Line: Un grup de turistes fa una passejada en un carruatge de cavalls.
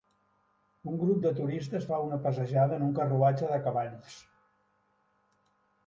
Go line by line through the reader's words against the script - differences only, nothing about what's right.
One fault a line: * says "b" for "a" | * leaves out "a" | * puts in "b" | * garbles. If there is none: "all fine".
all fine